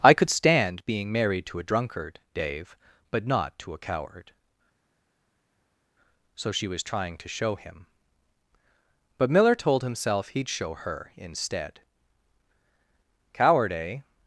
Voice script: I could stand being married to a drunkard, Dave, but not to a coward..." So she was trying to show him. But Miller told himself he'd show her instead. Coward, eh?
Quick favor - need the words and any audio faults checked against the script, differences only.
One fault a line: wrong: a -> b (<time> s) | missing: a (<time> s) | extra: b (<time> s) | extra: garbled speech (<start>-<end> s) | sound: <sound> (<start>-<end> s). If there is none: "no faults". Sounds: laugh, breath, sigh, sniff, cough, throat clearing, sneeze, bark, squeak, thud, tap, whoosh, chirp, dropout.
no faults